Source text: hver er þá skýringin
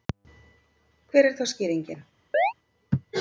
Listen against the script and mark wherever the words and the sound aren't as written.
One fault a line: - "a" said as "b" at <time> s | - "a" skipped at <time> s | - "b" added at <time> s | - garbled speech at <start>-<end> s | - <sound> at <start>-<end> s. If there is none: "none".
- chirp at 2.3-2.5 s